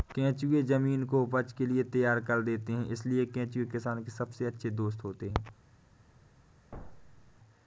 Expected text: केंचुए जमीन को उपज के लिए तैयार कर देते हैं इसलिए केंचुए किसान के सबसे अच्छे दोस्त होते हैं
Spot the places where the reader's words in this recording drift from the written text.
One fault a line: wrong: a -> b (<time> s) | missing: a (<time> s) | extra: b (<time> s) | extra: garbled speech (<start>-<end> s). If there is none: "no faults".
no faults